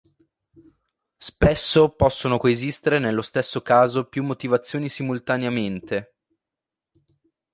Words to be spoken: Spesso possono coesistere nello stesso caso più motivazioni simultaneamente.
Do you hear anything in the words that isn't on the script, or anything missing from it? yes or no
no